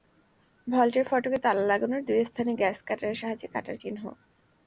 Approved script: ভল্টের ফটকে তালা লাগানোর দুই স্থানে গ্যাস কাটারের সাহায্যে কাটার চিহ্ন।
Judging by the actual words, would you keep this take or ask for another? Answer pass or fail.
pass